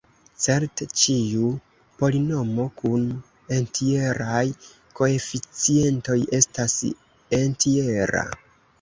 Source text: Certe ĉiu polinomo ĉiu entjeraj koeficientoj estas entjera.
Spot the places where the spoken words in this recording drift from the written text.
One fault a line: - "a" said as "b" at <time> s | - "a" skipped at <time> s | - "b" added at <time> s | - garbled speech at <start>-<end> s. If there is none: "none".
- "ĉiu" said as "kun" at 2.8 s